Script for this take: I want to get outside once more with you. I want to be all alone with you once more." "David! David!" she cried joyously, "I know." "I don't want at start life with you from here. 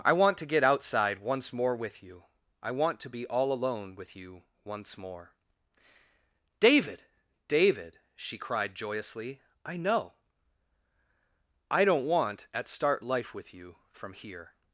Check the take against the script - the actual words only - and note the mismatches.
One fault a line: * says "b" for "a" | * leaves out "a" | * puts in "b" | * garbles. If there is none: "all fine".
all fine